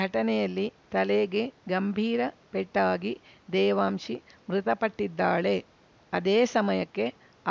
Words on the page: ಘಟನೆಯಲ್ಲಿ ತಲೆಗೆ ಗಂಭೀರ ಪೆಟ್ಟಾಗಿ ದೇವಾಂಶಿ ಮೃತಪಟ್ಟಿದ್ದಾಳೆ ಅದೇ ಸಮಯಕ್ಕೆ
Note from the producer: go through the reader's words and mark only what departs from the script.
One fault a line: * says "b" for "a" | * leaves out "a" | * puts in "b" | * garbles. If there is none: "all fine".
all fine